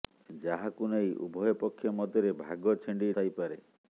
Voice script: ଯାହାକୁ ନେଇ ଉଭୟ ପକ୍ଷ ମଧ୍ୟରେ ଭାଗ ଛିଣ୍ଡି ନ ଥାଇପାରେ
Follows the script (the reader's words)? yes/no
no